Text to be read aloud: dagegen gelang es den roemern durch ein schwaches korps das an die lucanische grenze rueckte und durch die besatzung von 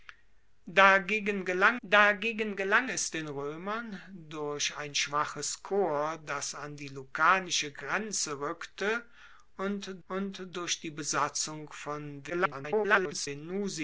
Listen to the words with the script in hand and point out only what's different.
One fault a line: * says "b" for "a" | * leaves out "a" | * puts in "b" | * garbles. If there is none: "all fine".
* puts in "dagegen gelang"
* puts in "und"
* garbles